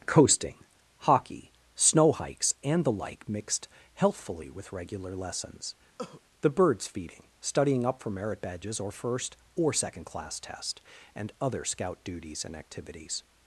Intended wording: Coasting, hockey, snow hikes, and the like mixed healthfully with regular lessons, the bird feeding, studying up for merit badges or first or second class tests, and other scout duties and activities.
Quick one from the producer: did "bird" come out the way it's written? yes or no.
no